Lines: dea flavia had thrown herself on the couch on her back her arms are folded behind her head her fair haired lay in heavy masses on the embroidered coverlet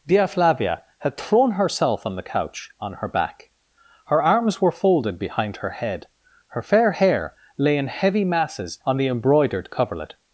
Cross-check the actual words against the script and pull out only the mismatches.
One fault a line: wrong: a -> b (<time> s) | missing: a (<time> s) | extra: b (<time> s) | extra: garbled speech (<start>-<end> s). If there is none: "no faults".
wrong: are -> were (4.6 s)
wrong: haired -> hair (6.9 s)